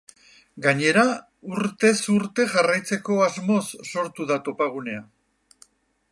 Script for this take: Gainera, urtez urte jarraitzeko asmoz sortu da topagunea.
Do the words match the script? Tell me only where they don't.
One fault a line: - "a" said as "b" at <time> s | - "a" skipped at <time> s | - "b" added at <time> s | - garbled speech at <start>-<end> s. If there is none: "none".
none